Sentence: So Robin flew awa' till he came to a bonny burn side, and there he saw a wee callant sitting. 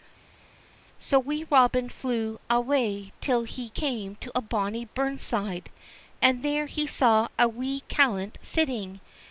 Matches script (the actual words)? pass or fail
fail